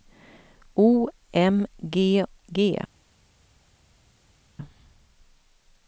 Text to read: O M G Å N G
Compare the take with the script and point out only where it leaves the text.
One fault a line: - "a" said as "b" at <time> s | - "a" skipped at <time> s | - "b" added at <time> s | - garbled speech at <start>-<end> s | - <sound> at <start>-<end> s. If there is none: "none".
- "Å N" skipped at 2.2 s